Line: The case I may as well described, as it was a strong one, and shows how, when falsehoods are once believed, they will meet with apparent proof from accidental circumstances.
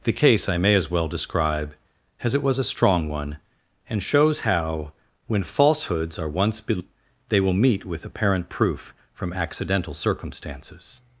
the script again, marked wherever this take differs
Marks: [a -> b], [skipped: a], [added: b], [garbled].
The case I may as well [described, -> describe] as it was a strong one, and shows how, when falsehoods are once believed, they will meet with apparent proof from accidental circumstances.